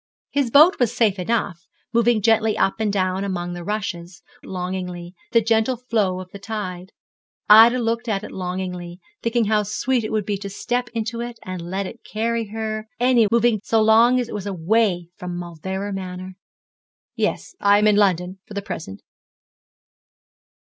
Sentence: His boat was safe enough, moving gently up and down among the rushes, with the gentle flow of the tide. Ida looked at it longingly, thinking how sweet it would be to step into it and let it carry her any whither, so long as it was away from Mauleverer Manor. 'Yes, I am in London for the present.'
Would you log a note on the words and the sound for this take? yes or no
yes